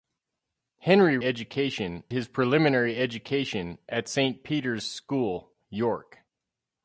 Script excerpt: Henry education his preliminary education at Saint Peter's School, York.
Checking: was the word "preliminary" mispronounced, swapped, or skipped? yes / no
no